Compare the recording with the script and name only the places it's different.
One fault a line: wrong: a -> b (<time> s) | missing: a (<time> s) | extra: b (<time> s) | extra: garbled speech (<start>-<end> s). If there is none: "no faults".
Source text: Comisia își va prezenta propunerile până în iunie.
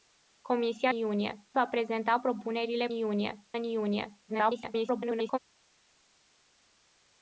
wrong: își -> iunie (0.9 s)
wrong: până -> iunie (2.9 s)
extra: garbled speech (4.3-5.4 s)